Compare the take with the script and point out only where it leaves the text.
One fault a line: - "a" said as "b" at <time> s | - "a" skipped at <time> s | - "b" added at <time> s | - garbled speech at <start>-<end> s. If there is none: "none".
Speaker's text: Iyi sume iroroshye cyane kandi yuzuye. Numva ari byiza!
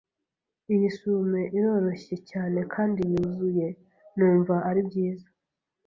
none